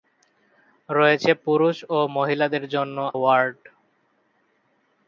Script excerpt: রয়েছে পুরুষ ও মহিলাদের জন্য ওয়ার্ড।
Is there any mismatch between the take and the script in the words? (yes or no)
no